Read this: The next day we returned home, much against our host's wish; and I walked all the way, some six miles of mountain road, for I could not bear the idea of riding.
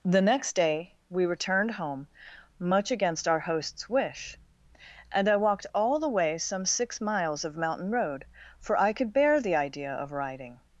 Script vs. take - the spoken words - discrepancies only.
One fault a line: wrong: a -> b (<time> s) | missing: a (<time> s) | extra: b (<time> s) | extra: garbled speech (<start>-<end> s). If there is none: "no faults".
missing: not (9.1 s)